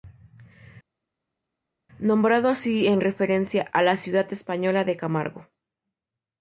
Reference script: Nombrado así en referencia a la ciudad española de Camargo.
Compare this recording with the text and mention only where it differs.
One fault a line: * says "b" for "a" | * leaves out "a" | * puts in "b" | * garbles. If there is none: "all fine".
all fine